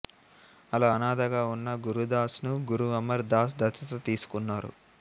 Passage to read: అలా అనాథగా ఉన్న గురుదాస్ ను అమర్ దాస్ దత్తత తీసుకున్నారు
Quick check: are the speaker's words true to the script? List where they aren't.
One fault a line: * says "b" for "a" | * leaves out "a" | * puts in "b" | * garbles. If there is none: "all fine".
* puts in "గురు"